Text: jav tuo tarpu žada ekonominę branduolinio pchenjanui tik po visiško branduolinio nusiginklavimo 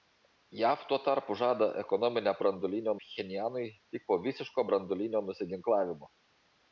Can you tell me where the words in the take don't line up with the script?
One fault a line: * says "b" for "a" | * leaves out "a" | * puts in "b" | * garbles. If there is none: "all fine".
all fine